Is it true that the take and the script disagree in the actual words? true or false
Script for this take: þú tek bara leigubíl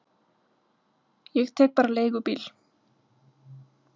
true